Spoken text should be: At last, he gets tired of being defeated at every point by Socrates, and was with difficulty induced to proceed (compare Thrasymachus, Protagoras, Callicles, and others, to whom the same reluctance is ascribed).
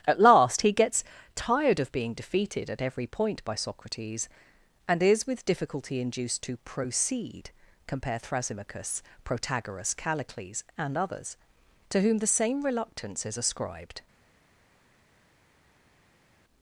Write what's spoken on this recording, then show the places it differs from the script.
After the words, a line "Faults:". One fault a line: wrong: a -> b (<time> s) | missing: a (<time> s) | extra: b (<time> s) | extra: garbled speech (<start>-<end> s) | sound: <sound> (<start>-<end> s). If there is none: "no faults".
At last, he gets tired of being defeated at every point by Socrates, and is with difficulty induced to proceed (compare Thrasymachus, Protagoras, Callicles, and others, to whom the same reluctance is ascribed).
Faults:
wrong: was -> is (5.0 s)